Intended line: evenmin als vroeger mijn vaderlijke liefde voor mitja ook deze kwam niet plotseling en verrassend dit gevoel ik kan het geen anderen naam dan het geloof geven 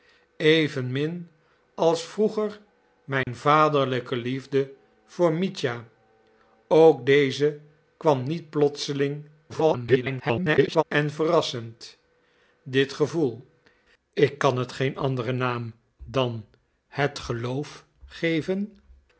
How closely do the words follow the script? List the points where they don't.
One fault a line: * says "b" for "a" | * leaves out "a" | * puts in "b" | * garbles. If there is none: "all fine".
* garbles